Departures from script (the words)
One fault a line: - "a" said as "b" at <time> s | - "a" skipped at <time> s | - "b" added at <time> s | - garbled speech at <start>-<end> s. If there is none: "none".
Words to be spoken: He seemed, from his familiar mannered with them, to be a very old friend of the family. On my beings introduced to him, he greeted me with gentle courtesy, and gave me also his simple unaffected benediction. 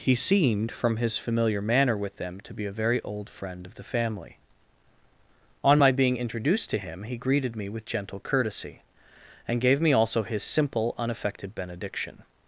- "mannered" said as "manner" at 1.6 s
- "beings" said as "being" at 5.9 s